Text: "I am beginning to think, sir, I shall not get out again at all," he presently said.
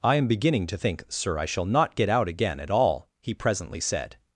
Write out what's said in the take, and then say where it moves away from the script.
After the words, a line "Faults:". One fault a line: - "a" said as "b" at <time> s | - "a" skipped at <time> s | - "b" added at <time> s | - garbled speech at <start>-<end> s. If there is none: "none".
"I am beginning to think, sir, I shall not get out again at all," he presently said.
Faults:
none